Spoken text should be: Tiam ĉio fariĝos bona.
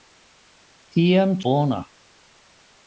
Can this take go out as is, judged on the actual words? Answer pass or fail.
fail